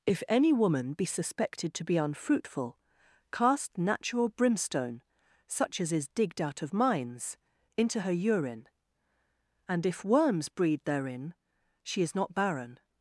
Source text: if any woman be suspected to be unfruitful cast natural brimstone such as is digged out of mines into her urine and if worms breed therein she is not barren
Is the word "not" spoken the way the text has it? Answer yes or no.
yes